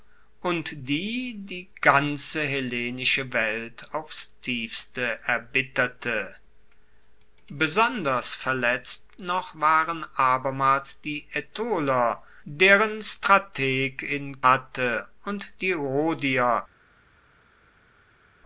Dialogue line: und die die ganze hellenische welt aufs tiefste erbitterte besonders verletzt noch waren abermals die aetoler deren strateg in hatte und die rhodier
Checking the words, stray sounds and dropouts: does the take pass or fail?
pass